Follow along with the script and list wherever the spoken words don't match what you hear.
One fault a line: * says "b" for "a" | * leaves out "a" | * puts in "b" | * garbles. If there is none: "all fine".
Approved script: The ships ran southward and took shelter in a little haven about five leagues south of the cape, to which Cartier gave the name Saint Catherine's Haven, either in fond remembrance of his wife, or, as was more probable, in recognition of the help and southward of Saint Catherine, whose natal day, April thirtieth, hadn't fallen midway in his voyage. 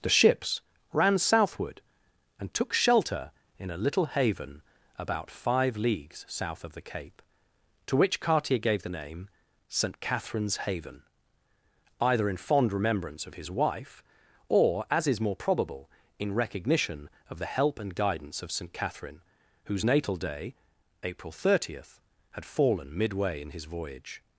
* says "is" for "was"
* says "guidance" for "southward"
* says "had" for "hadn't"